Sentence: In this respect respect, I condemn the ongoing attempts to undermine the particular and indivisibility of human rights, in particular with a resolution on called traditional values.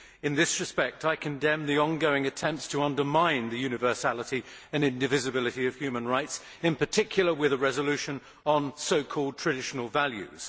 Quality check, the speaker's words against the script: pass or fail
fail